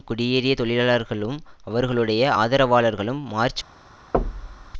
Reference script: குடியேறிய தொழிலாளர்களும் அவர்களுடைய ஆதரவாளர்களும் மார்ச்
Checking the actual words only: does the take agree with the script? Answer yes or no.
yes